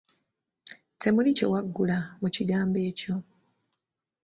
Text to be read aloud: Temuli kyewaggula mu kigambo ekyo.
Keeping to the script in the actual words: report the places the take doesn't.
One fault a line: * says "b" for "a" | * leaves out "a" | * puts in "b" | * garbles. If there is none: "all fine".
all fine